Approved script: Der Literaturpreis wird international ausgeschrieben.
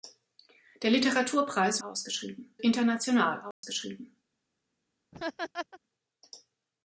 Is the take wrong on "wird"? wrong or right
wrong